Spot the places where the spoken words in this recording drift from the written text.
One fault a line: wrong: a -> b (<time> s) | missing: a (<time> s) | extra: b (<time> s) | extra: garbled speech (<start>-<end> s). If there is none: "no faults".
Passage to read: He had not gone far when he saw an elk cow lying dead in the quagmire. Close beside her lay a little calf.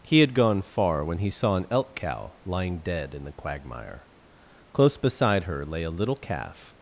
missing: not (0.3 s)